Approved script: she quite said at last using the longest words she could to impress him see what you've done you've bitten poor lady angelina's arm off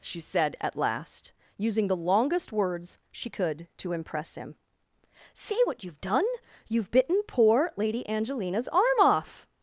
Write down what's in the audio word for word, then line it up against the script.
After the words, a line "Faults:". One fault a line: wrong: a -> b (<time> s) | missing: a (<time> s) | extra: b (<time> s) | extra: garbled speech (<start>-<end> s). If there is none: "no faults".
she said at last using the longest words she could to impress him see what you've done you've bitten poor lady angelina's arm off
Faults:
missing: quite (0.2 s)